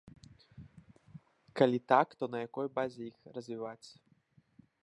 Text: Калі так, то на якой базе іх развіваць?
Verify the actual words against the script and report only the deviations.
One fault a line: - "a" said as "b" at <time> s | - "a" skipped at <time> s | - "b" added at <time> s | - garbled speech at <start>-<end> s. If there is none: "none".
none